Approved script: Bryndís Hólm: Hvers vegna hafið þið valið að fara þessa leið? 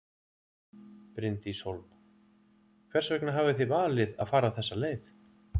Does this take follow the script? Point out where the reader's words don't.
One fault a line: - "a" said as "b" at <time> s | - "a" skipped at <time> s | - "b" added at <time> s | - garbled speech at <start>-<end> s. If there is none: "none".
none